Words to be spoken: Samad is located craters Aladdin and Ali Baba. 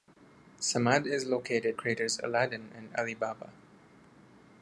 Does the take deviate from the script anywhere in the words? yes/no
no